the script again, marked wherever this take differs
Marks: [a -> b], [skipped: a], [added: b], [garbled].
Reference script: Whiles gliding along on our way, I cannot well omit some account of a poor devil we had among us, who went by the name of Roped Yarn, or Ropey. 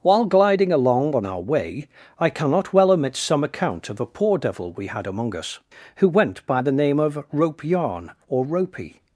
[Whiles -> While] gliding along on our way, I cannot well omit some account of a poor devil we had among us, who went by the name of [Roped -> Rope] Yarn, or Ropey.